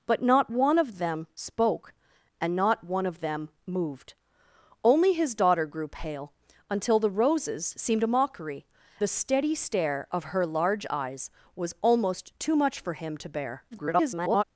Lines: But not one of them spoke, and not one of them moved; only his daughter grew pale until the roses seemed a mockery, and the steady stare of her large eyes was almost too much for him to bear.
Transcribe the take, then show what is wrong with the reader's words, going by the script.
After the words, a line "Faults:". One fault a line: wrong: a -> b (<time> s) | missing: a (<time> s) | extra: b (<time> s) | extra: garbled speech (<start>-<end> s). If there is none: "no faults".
But not one of them spoke, and not one of them moved; only his daughter grew pale until the roses seemed a mockery, the steady stare of her large eyes was almost too much for him to bear. [garbled]
Faults:
missing: and (8.7 s)
extra: garbled speech (13.7-14.4 s)